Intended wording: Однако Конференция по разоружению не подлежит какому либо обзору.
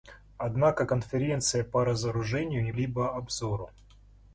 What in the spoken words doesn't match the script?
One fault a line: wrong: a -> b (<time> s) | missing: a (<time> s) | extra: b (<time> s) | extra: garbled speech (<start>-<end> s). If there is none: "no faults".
missing: подлежит какому (2.7 s)